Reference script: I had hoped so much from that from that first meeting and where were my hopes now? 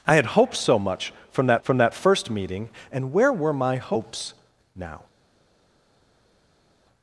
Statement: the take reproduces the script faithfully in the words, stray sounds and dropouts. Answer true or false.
true